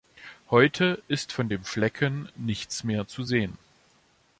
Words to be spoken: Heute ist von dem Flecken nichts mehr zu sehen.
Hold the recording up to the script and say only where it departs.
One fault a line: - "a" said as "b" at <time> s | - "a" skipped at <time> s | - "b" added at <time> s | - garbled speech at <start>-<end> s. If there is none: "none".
none